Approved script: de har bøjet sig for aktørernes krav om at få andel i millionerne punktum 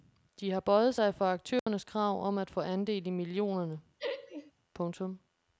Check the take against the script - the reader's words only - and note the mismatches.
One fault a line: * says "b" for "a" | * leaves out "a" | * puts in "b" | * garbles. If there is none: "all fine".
all fine